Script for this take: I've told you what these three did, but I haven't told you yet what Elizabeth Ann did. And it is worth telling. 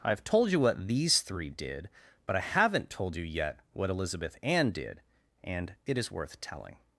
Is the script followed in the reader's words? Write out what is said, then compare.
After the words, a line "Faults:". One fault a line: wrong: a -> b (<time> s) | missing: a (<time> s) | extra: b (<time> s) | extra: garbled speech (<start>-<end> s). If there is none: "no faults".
I've told you what these three did, but I haven't told you yet what Elizabeth Ann did. And it is worth telling.
Faults:
no faults